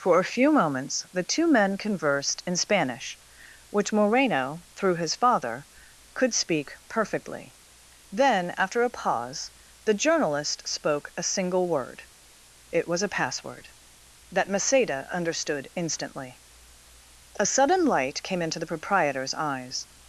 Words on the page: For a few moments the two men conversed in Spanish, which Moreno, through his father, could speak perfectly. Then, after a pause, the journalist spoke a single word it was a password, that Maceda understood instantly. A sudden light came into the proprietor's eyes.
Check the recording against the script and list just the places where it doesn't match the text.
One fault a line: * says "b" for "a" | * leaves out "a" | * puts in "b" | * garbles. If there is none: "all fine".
all fine